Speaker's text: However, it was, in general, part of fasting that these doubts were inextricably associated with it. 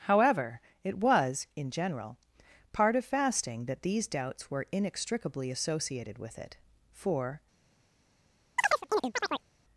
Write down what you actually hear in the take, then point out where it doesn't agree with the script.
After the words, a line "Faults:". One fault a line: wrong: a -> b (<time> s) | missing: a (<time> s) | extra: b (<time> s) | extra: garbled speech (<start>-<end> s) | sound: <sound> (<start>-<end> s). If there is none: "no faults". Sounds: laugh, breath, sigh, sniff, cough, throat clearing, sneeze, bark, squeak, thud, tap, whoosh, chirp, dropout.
However, it was, in general, part of fasting that these doubts were inextricably associated with it. For
Faults:
extra: For (6.9 s)
sound: chirp (8.6-9.5 s)